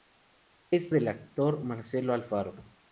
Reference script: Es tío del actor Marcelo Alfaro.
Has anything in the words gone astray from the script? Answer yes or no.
yes